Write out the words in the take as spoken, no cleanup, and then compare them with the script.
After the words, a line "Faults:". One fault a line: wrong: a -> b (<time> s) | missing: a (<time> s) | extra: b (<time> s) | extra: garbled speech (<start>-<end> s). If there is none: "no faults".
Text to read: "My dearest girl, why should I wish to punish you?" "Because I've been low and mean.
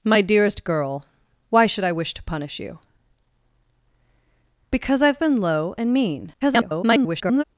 "My dearest girl, why should I wish to punish you?" "Because I've been low and mean. [garbled]
Faults:
extra: garbled speech (6.4-7.4 s)